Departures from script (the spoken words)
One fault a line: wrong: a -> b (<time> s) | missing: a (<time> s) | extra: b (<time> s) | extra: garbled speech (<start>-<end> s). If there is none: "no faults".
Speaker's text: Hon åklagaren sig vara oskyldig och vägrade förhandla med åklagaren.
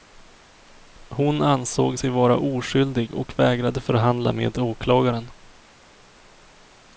wrong: åklagaren -> ansåg (1.4 s)